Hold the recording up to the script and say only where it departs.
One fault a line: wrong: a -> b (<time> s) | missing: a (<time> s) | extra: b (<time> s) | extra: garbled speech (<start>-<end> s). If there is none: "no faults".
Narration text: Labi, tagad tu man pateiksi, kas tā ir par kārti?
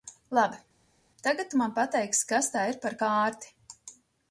no faults